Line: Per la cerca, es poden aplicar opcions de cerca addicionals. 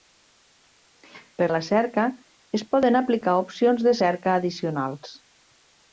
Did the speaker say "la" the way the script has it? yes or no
yes